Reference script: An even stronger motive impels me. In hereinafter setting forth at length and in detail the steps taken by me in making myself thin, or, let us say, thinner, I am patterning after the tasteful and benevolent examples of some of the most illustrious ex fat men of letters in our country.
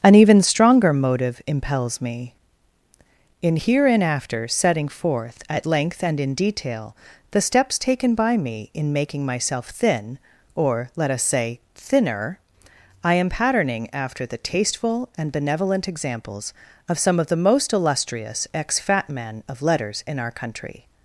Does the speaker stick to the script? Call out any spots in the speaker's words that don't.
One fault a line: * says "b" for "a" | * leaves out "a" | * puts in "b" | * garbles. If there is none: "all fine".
all fine